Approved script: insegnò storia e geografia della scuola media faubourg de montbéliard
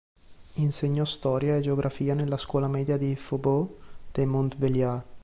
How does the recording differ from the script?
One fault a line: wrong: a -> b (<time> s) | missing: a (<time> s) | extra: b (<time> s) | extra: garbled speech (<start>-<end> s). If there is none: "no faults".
wrong: della -> nella (2.1 s)
extra: di (3.0 s)